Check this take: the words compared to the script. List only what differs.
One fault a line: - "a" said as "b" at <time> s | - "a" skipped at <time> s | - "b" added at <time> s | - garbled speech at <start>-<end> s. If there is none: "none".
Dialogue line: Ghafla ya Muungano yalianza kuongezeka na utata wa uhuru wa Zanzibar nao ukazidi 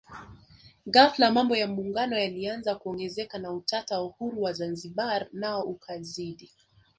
- "mambo" added at 1.3 s